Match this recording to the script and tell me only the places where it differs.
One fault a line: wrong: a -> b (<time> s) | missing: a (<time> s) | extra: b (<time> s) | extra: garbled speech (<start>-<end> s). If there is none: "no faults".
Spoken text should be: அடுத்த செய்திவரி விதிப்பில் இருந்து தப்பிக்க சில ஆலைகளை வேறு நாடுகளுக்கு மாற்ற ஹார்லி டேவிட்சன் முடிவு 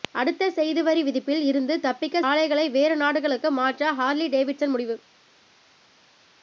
missing: சில (2.2 s)